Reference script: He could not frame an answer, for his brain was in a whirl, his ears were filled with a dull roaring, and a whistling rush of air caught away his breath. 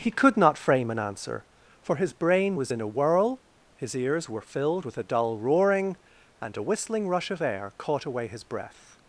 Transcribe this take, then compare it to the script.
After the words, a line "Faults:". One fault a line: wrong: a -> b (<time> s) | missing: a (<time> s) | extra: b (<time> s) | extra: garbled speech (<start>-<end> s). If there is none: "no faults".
He could not frame an answer, for his brain was in a whirl, his ears were filled with a dull roaring, and a whistling rush of air caught away his breath.
Faults:
no faults